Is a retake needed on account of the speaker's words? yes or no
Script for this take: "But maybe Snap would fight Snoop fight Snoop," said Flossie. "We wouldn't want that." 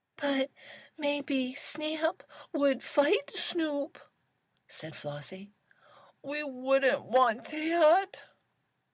yes